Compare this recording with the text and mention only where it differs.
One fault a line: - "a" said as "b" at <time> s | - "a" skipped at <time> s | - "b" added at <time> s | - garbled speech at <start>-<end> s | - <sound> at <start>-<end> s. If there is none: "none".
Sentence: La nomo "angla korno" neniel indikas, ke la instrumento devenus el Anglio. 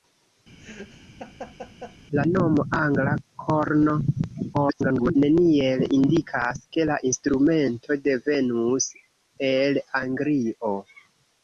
- laugh at 0.6-2.0 s
- garbled speech at 4.5-5.2 s